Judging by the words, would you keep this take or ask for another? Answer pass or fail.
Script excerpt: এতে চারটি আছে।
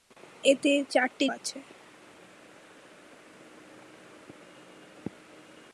pass